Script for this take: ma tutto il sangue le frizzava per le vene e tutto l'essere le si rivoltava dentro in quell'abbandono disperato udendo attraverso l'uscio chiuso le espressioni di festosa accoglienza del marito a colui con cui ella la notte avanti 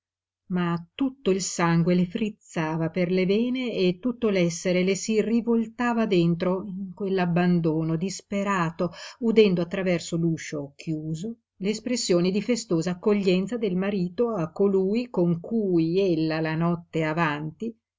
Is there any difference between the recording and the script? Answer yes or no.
no